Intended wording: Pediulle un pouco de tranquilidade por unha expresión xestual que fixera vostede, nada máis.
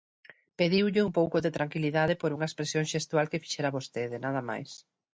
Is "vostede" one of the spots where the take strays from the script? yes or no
no